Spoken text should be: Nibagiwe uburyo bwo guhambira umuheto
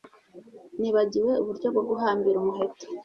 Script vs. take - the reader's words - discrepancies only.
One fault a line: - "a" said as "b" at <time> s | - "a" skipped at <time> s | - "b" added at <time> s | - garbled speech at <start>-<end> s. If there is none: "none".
none